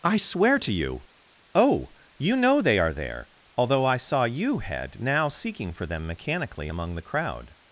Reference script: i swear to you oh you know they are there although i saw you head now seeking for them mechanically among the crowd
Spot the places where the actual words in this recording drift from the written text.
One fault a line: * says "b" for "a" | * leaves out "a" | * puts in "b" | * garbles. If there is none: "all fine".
all fine